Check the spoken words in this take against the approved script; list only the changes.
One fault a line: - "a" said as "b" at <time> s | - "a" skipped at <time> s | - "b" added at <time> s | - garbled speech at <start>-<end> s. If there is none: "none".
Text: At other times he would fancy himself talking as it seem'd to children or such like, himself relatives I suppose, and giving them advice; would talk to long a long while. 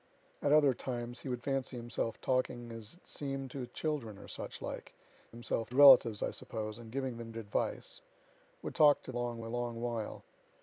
none